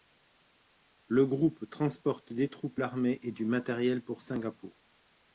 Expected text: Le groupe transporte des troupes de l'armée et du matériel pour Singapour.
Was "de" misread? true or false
true